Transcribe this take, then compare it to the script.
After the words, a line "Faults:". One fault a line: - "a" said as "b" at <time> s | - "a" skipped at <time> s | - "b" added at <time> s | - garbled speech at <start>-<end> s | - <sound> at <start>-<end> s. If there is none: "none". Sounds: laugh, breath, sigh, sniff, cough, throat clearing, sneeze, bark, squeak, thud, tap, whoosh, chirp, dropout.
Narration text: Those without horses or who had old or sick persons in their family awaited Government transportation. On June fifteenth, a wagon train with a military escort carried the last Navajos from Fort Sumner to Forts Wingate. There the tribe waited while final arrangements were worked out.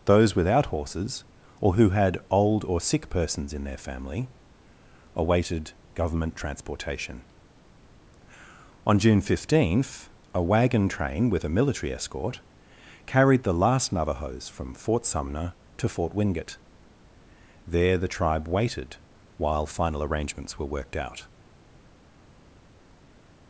Those without horses or who had old or sick persons in their family awaited Government transportation. On June fifteenth, a wagon train with a military escort carried the last Navajos from Fort Sumner to Fort Wingate. There the tribe waited while final arrangements were worked out.
Faults:
- "Forts" said as "Fort" at 15.9 s